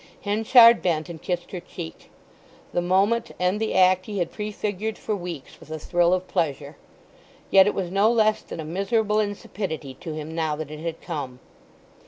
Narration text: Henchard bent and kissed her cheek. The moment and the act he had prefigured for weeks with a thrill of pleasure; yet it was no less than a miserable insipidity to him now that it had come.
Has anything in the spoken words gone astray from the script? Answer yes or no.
no